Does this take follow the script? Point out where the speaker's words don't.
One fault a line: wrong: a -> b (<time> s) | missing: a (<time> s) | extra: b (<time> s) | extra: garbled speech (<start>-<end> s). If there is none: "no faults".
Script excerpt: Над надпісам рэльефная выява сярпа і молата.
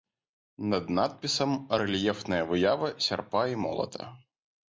no faults